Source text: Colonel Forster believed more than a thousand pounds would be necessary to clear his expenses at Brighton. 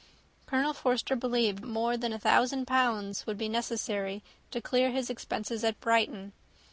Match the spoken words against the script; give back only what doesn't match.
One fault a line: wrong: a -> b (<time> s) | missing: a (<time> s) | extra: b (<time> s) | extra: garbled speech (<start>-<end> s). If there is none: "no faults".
no faults